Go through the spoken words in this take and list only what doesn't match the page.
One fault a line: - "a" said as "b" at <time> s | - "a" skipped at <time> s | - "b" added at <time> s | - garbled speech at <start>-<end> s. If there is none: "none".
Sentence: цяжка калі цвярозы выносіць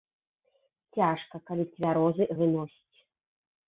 none